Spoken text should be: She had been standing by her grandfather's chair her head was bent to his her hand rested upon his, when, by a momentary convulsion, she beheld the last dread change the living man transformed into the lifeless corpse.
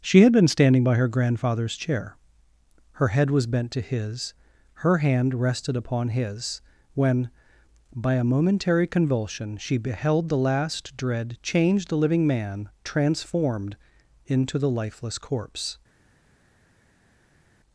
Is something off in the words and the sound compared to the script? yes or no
no